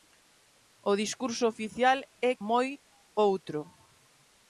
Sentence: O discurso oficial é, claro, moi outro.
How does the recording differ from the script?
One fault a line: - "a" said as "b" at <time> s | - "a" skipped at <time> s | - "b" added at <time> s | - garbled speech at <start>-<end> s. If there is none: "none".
- "claro" skipped at 2.3 s